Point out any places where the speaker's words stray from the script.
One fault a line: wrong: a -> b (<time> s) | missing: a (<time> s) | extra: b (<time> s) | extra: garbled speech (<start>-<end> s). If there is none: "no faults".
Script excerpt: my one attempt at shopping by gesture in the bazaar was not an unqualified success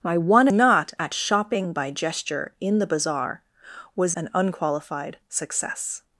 wrong: attempt -> not (0.5 s)
missing: not (4.2 s)